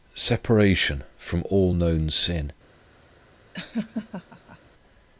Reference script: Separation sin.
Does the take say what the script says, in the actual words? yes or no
no